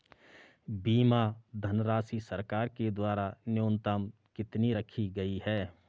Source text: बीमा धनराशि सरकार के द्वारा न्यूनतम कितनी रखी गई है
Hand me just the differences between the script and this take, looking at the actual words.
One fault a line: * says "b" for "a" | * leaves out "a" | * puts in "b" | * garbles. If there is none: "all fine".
all fine